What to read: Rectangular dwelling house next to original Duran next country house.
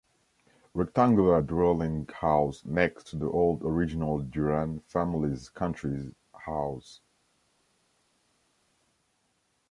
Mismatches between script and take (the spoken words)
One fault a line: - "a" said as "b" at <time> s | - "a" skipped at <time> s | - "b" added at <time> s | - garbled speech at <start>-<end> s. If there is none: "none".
- "the old" added at 3.2 s
- "next" said as "family's" at 4.8 s